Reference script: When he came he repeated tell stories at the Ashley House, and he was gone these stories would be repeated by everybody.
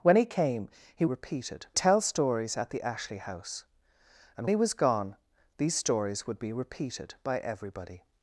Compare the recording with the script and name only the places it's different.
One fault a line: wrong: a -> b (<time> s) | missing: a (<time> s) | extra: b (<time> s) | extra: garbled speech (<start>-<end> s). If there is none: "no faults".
no faults